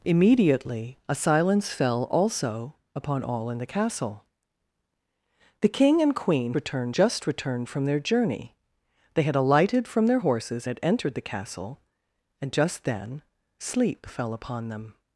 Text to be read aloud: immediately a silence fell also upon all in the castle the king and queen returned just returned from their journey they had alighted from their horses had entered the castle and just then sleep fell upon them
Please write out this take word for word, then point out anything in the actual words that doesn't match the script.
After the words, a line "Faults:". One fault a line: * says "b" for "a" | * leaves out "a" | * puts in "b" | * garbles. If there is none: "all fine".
immediately a silence fell also upon all in the castle the king and queen returned just returned from their journey they had alighted from their horses had entered the castle and just then sleep fell upon them
Faults:
all fine